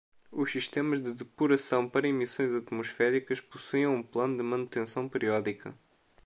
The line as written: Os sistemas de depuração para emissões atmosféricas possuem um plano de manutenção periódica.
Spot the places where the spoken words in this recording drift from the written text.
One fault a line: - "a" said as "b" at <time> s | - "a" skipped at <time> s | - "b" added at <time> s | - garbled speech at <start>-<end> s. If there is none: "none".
none